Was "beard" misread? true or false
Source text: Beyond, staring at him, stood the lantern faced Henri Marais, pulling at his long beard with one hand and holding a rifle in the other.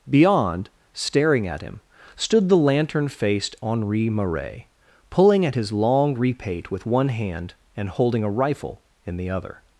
true